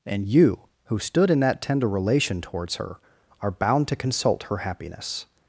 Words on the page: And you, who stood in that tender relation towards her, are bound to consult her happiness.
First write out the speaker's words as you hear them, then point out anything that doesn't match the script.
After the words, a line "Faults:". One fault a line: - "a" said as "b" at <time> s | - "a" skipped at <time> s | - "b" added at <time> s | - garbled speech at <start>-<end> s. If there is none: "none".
And you, who stood in that tender relation towards her, are bound to consult her happiness.
Faults:
none